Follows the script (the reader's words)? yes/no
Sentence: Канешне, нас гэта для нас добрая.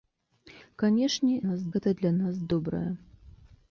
yes